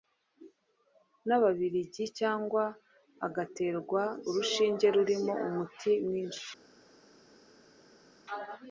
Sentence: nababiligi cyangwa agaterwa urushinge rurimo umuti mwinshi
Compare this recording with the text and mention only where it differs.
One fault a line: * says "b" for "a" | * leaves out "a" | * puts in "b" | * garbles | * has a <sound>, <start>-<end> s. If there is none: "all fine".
all fine